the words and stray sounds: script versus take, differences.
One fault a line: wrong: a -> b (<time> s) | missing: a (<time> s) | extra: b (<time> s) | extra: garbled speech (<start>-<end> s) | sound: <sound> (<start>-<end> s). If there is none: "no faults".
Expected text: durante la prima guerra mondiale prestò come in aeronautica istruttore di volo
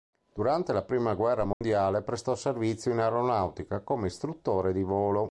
sound: dropout (1.5-1.6 s)
wrong: come -> servizio (2.3 s)
extra: come (3.8 s)